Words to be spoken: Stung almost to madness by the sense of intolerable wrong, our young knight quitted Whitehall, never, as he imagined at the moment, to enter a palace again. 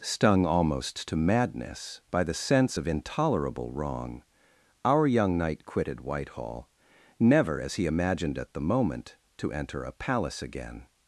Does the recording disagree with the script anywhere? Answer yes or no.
no